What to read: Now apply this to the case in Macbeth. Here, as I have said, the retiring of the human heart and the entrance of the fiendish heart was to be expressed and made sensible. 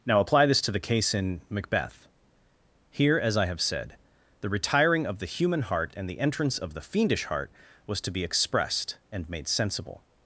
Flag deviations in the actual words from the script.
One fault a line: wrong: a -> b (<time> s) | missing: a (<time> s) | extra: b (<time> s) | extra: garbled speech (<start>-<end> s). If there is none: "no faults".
no faults